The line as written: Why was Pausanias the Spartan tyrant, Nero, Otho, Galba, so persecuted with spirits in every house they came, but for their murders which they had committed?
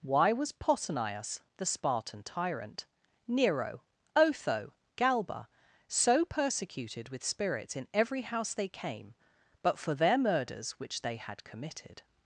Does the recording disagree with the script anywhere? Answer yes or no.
no